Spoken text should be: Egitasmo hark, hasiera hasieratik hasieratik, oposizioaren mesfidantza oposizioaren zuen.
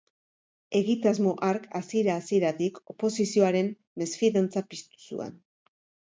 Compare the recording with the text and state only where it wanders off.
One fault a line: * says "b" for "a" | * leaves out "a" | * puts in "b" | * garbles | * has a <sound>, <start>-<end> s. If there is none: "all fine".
* leaves out "hasieratik"
* says "piztu" for "oposizioaren"